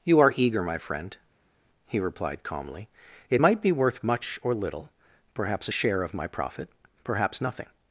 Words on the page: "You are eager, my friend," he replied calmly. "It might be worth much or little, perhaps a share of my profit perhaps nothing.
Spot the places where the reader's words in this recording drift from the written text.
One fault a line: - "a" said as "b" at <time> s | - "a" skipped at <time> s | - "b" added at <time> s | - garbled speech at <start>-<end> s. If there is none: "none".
none